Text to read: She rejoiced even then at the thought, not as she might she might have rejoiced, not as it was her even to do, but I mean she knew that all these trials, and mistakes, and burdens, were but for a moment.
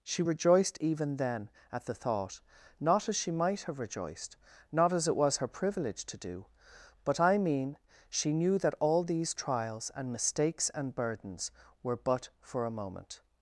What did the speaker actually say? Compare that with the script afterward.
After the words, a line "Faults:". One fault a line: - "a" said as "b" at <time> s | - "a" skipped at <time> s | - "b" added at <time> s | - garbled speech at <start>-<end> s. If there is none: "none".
She rejoiced even then at the thought, not as she might have rejoiced, not as it was her privilege to do, but I mean she knew that all these trials, and mistakes, and burdens, were but for a moment.
Faults:
- "she might" skipped at 3.6 s
- "even" said as "privilege" at 5.5 s